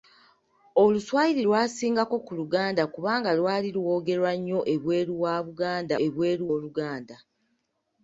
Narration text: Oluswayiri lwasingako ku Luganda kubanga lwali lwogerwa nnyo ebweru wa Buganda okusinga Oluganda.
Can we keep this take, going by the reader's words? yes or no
no